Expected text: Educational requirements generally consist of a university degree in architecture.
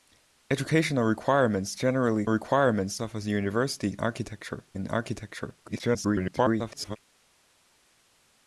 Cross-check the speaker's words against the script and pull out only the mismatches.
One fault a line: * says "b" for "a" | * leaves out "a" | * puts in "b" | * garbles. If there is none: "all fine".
* says "requirements" for "consist"
* says "architecture" for "degree"
* garbles